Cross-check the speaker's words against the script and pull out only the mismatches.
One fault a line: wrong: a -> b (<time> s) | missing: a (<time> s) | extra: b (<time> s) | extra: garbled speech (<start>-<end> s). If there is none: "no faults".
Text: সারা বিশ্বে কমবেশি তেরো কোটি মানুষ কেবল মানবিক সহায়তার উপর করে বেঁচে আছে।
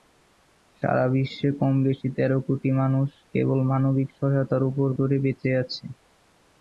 no faults